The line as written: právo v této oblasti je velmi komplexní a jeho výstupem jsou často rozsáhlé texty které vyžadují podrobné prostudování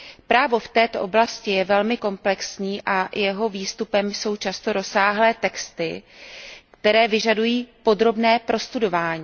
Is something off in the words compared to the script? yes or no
no